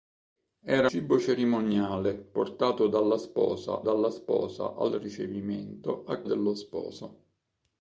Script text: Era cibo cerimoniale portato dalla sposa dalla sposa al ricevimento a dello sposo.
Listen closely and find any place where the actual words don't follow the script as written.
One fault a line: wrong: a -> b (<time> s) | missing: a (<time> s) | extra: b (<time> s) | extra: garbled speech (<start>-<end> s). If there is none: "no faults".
no faults